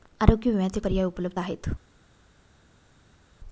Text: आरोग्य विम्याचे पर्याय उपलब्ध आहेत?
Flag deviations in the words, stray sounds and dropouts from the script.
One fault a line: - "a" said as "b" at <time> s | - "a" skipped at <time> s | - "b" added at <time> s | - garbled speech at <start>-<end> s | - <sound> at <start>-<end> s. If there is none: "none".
none